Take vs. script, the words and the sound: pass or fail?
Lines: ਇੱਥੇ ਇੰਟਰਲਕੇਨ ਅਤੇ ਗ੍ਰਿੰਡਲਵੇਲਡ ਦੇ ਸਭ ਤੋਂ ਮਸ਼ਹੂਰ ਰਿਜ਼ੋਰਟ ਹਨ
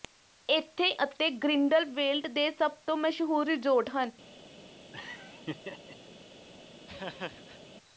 fail